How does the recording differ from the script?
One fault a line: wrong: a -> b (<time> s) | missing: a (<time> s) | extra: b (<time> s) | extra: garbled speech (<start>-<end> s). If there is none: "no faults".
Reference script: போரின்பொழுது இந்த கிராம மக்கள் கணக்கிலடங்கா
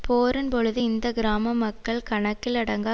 no faults